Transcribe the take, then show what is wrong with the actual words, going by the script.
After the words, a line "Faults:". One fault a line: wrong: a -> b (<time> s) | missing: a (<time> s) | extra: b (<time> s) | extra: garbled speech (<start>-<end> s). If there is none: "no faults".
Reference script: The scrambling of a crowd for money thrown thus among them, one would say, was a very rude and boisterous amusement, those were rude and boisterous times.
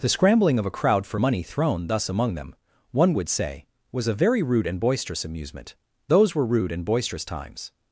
The scrambling of a crowd for money thrown thus among them, one would say, was a very rude and boisterous amusement, those were rude and boisterous times.
Faults:
no faults